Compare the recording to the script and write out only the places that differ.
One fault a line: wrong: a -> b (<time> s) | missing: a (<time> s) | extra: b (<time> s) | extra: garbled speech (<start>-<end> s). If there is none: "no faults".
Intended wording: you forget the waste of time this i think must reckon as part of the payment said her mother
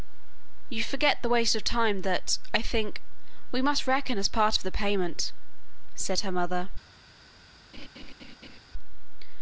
wrong: this -> that (2.0 s)
extra: we (3.5 s)